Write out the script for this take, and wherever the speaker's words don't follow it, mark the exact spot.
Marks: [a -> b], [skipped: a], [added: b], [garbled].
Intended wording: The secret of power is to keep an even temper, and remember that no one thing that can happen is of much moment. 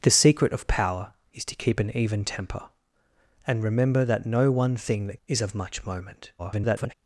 The secret of power is to keep an even temper, and remember that no one thing that [skipped: can happen] is of much moment. [garbled]